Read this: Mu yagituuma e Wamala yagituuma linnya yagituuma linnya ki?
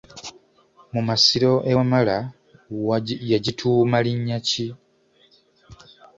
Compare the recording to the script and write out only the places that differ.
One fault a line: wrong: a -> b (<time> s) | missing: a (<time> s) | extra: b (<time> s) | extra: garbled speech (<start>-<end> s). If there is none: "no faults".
wrong: yagituuma -> masiro (1.1 s)
missing: yagituuma linnya (4.4 s)